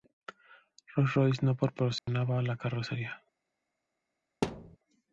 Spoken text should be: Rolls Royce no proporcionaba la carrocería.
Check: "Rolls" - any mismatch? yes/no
no